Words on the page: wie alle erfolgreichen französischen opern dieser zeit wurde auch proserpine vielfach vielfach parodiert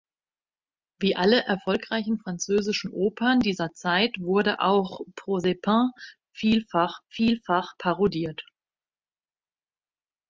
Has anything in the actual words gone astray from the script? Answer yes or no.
no